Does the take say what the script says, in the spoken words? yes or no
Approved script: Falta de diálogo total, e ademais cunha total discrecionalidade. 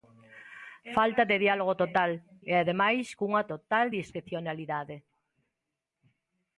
yes